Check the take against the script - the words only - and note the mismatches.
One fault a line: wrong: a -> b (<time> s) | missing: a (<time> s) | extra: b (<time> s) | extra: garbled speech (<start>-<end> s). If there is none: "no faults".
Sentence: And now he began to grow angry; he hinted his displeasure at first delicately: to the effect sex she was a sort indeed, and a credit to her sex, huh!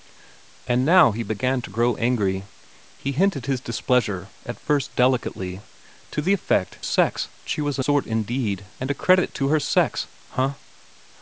no faults